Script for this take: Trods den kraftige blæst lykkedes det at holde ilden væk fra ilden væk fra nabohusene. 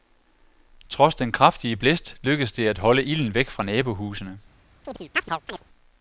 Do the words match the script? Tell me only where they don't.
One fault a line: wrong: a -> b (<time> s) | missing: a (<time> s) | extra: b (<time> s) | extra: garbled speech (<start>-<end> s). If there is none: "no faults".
missing: ilden væk fra (3.6 s)